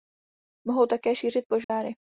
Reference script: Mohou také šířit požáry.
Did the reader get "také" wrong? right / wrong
right